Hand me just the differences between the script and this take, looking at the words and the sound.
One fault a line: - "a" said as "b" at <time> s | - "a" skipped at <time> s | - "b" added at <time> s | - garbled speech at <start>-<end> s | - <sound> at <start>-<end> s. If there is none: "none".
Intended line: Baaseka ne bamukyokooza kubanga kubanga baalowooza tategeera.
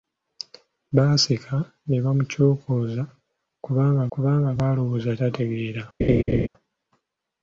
- laugh at 6.0-6.5 s